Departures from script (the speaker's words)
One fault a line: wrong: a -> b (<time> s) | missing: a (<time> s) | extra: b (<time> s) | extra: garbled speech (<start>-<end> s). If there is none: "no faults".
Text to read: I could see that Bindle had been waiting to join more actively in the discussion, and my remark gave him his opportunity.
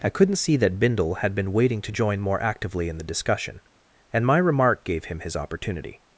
wrong: could -> couldn't (0.1 s)